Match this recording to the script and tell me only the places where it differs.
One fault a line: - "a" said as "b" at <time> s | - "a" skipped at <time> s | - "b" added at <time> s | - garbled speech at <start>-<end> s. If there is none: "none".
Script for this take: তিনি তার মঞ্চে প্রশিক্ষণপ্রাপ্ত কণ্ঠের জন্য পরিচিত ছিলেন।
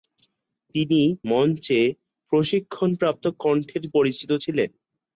- "তার" skipped at 1.0 s
- "জন্য" skipped at 3.8 s